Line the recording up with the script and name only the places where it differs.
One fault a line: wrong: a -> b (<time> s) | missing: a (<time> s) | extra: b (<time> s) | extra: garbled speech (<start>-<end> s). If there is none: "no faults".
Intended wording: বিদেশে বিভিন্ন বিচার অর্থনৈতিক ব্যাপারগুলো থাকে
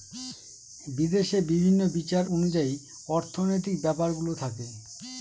extra: অনুযায়ী (2.3 s)